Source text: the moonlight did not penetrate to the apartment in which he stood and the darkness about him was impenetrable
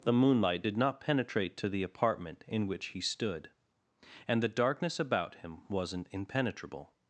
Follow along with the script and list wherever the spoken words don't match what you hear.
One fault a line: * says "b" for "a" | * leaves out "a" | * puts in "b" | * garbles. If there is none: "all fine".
* says "wasn't" for "was"